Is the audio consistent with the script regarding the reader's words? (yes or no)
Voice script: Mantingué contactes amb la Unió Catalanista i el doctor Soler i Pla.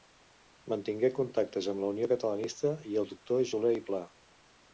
yes